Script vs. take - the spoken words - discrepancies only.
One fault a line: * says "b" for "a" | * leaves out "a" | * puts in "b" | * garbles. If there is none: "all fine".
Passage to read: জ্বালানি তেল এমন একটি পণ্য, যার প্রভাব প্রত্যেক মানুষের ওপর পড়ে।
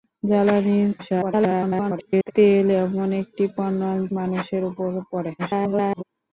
* garbles
* leaves out "যার প্রভাব প্রত্যেক"
* garbles